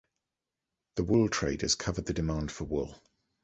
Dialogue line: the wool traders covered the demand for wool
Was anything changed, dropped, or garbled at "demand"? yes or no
no